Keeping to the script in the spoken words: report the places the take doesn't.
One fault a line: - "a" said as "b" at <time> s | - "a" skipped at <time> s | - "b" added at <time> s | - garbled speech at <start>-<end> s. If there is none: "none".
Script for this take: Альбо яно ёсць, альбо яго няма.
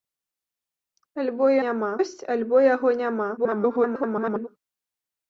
- "яно" said as "няма" at 1.7 s
- garbled speech at 3.4-4.5 s